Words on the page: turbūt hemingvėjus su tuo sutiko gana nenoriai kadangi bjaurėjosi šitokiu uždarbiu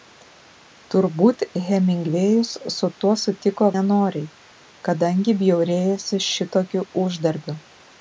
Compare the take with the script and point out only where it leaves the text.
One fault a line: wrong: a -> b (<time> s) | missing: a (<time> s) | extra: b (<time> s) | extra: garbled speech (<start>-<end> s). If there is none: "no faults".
missing: gana (3.7 s)